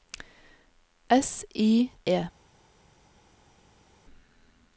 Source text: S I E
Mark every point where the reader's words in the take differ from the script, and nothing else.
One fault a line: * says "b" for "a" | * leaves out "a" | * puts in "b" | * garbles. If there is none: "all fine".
all fine